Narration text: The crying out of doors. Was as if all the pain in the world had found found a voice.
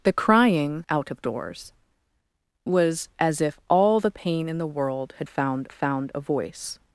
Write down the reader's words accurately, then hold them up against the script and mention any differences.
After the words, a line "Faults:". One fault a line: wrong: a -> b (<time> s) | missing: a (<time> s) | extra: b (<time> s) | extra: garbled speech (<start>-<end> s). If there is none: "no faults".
The crying out of doors. Was as if all the pain in the world had found found a voice.
Faults:
no faults